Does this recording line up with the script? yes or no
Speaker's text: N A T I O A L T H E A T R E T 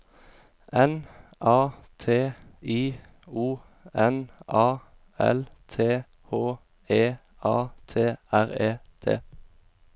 no